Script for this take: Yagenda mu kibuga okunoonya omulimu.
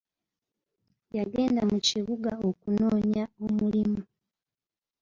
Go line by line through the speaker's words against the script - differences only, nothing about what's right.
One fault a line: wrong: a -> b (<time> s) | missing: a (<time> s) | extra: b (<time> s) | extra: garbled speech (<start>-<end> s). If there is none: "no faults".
no faults